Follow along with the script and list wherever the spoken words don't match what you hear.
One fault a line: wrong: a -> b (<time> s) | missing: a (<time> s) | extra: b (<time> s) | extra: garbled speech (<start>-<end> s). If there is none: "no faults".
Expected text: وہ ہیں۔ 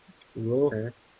no faults